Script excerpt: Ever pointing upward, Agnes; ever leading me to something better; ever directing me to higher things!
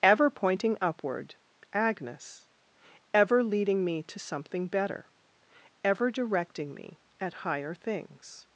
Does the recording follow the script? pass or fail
fail